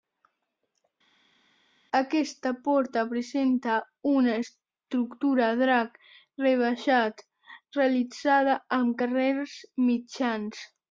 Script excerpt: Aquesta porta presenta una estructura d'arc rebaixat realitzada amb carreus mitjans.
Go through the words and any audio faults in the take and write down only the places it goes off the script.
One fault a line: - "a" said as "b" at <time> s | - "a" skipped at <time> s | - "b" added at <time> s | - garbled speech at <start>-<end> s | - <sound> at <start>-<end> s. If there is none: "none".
none